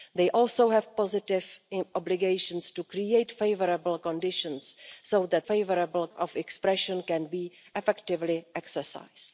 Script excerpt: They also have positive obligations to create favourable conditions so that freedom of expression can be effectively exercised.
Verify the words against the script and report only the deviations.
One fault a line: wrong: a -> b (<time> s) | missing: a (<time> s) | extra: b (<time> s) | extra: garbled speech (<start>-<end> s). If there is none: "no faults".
wrong: freedom -> favourable (5.4 s)